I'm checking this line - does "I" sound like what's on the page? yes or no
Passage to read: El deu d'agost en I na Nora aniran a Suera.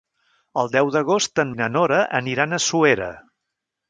yes